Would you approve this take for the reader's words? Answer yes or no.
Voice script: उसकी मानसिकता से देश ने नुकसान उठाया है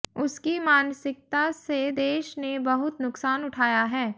no